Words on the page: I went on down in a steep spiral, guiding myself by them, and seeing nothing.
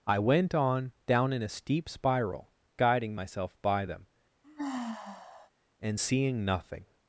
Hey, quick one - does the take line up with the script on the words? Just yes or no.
yes